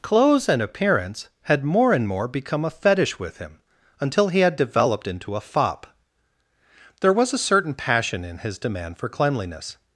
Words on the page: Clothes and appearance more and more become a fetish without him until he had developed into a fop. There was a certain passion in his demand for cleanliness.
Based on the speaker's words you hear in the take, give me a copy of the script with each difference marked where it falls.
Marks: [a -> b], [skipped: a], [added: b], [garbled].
Clothes and appearance [added: had] more and more become a fetish [without -> with] him until he had developed into a fop. There was a certain passion in his demand for cleanliness.